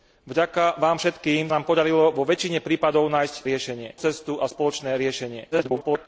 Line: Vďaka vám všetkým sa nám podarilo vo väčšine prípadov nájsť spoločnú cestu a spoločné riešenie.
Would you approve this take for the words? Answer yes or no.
no